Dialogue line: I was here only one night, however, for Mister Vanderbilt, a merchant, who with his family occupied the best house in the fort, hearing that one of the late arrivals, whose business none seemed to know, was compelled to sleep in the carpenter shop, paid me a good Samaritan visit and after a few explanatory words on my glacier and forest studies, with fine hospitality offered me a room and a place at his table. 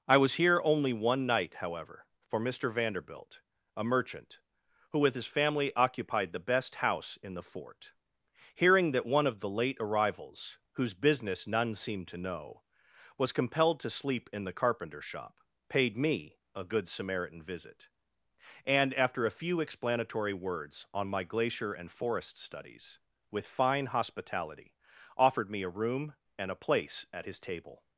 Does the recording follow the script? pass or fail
pass